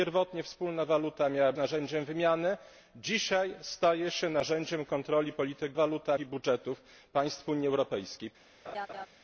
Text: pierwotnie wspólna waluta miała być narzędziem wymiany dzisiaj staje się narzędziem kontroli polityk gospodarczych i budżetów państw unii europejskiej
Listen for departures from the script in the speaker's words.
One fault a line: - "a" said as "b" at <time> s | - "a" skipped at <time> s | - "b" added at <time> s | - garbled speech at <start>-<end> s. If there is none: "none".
- "być" skipped at 1.5 s
- "gospodarczych" said as "waluta" at 5.7 s